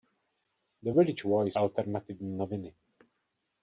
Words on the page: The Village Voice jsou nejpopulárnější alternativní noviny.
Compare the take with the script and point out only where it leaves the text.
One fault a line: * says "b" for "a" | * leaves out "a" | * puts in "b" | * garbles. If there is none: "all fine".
* leaves out "jsou nejpopulárnější"